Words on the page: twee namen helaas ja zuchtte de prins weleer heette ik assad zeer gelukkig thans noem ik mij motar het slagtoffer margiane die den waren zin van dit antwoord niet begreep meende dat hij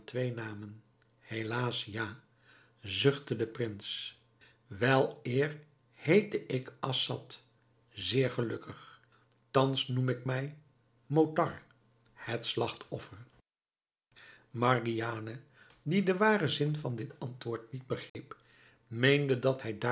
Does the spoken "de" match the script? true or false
true